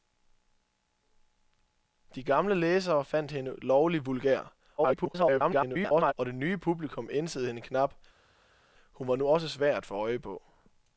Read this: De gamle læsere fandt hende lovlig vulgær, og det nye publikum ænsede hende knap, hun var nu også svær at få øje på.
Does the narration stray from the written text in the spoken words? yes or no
yes